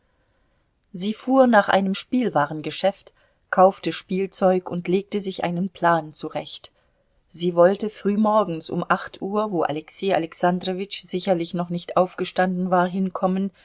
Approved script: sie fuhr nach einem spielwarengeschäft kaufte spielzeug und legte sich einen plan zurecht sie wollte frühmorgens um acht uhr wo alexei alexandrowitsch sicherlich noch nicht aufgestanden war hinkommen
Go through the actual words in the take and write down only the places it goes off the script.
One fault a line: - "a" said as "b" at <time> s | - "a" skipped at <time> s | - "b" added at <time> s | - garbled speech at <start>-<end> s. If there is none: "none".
none